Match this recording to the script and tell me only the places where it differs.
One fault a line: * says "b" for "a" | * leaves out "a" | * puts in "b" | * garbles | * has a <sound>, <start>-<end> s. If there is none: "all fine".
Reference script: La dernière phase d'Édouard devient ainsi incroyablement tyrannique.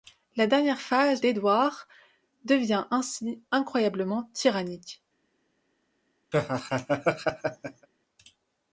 * has a laugh, 6.3-7.9 s